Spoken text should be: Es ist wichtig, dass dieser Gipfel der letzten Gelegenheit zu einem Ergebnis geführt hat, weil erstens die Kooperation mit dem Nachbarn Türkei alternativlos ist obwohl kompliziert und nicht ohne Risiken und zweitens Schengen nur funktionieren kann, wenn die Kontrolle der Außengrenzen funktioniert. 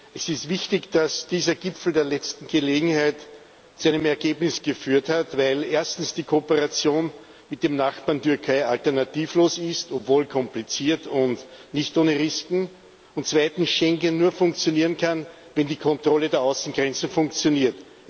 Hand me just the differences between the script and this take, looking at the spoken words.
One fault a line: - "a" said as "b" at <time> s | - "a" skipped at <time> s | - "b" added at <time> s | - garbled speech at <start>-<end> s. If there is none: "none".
none